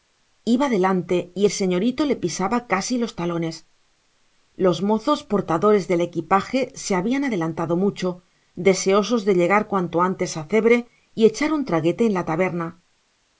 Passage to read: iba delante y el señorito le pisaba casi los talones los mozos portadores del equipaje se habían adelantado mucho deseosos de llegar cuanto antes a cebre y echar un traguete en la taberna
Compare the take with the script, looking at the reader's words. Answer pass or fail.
pass